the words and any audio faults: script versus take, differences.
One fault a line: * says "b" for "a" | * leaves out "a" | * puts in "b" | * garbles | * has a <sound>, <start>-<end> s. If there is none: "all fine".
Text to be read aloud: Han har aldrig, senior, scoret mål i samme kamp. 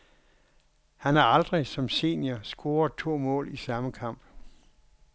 * puts in "som"
* puts in "to"